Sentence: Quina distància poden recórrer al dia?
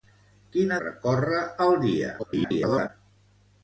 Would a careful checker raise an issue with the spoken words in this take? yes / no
yes